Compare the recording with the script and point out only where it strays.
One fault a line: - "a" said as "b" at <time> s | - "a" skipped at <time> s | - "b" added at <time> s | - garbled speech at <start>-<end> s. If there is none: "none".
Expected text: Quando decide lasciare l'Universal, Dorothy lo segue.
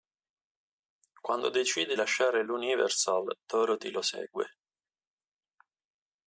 none